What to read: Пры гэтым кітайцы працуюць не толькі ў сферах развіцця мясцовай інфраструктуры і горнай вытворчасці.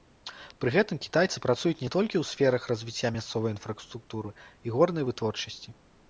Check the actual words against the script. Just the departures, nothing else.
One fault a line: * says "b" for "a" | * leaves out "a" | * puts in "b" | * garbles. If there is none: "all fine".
all fine